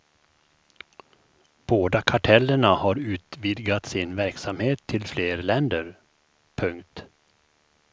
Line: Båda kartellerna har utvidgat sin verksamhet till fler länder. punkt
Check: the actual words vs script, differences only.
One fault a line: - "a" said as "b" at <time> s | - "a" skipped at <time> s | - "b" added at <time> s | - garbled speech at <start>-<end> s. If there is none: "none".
none